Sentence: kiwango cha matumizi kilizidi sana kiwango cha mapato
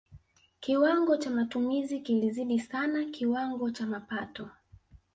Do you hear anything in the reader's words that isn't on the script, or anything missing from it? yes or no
no